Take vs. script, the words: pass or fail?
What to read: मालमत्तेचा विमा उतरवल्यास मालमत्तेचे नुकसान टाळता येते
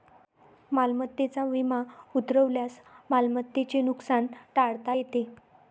pass